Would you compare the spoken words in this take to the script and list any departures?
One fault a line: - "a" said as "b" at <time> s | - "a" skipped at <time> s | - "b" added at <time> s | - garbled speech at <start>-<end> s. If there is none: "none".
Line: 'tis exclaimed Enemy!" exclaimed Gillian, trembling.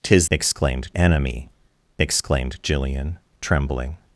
none